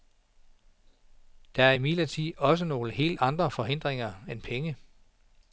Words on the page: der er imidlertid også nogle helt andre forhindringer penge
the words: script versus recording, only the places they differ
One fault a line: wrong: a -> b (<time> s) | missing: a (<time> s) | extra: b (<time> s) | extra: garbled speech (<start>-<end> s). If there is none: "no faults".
extra: end (4.3 s)